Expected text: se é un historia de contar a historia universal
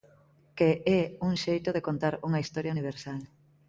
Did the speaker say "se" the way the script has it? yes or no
no